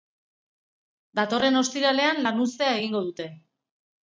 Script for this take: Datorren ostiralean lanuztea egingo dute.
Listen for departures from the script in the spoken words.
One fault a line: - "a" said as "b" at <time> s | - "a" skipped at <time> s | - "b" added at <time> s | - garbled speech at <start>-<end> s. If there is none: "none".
none